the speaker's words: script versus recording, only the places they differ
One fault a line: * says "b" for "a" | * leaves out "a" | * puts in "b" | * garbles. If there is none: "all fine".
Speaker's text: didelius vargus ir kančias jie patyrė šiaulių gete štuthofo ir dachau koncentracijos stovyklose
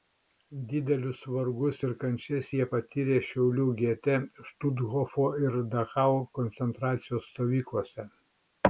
all fine